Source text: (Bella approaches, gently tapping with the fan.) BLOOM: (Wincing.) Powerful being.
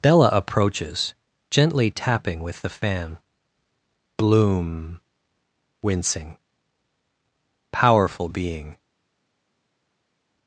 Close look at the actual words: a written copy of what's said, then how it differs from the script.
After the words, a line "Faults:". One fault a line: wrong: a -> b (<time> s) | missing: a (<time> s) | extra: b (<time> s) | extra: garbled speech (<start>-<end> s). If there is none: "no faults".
(Bella approaches, gently tapping with the fan.) BLOOM: (Wincing.) Powerful being.
Faults:
no faults